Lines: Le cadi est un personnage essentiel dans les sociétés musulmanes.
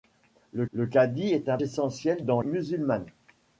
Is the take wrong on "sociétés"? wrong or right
wrong